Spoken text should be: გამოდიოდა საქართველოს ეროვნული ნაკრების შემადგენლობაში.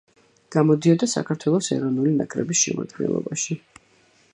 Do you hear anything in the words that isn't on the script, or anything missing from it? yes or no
no